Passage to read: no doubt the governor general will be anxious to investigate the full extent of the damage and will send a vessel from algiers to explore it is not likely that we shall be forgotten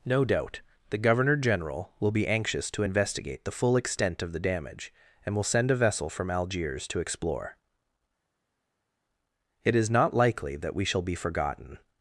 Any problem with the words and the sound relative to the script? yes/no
no